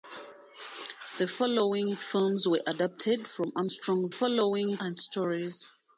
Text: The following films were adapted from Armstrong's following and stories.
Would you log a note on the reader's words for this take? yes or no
no